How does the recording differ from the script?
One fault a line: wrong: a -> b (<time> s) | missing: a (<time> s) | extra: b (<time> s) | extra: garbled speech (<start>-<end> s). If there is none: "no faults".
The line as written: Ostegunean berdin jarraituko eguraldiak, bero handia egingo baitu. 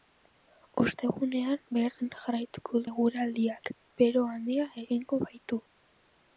no faults